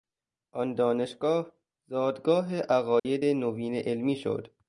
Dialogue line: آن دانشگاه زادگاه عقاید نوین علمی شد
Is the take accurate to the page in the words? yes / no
yes